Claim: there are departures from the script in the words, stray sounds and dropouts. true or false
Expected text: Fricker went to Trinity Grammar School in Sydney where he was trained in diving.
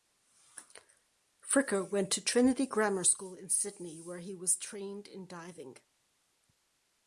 false